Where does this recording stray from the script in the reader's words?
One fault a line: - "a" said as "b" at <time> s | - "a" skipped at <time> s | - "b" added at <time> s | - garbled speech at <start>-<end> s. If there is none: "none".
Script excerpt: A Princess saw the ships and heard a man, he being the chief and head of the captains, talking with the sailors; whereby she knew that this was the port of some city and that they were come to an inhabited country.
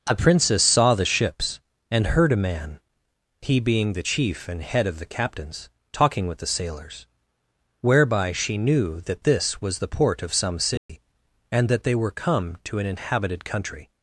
none